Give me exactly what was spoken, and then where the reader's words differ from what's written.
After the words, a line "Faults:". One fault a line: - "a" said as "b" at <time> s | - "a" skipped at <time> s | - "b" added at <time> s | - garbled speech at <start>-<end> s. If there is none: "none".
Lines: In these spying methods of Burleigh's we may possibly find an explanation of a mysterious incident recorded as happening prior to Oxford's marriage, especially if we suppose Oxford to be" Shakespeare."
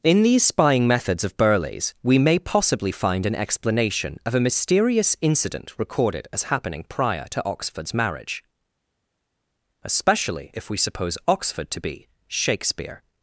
In these spying methods of Burleigh's we may possibly find an explanation of a mysterious incident recorded as happening prior to Oxford's marriage, especially if we suppose Oxford to be" Shakespeare."
Faults:
none